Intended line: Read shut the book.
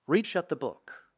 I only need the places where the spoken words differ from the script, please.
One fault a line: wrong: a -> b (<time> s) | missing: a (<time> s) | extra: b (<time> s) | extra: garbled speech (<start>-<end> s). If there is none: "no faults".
no faults